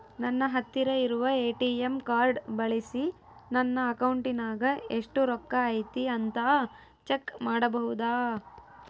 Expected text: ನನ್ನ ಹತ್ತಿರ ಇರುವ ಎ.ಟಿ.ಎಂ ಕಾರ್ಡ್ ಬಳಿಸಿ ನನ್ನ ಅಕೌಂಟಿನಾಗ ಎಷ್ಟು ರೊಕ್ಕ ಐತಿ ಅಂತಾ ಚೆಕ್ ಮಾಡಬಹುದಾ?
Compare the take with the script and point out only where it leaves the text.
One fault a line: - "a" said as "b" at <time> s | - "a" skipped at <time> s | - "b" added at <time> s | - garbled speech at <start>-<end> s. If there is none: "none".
none